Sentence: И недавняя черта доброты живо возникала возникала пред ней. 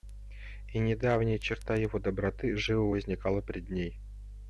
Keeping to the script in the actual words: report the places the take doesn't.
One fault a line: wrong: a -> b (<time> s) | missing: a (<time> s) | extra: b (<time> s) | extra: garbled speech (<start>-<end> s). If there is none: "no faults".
extra: его (1.8 s)
missing: возникала (3.4 s)